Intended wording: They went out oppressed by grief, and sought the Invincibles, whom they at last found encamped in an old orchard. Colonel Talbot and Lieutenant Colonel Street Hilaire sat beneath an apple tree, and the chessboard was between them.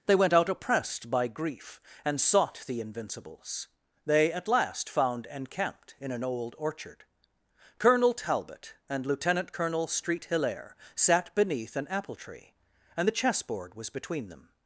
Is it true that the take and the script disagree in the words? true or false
true